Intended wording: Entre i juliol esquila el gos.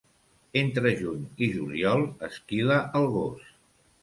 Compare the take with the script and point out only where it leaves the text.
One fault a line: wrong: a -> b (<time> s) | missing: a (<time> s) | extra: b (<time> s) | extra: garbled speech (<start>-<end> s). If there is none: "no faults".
extra: juny (1.0 s)